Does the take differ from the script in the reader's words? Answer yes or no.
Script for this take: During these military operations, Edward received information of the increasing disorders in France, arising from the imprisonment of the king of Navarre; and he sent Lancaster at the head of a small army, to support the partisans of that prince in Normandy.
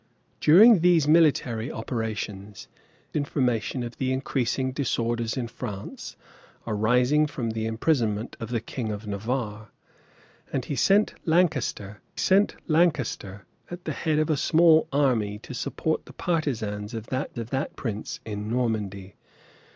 yes